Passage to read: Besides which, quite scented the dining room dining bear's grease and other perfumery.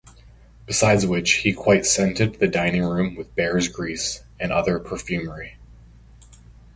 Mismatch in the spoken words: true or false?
true